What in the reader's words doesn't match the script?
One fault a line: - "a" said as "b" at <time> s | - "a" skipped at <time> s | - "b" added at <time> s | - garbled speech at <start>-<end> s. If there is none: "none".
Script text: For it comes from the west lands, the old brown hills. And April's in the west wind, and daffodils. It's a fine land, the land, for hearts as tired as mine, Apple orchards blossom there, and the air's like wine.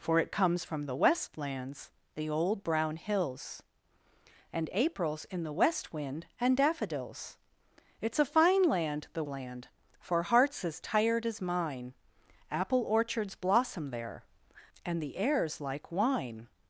none